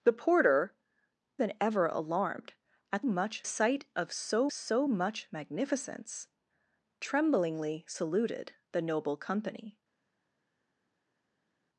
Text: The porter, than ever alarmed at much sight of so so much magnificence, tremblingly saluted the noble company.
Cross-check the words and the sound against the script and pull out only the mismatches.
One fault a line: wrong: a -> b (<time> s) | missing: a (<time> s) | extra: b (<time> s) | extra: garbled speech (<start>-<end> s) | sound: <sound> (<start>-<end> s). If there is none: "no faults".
no faults